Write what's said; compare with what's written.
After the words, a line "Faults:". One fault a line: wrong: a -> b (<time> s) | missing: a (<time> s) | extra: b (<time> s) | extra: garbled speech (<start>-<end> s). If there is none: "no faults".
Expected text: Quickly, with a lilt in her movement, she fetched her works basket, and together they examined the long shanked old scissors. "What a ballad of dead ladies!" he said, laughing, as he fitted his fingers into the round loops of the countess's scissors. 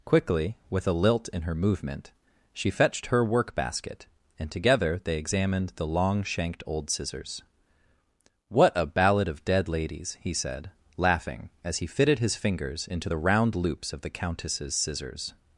Quickly, with a lilt in her movement, she fetched her work basket, and together they examined the long shanked old scissors. "What a ballad of dead ladies!" he said, laughing, as he fitted his fingers into the round loops of the countess's scissors.
Faults:
wrong: works -> work (3.2 s)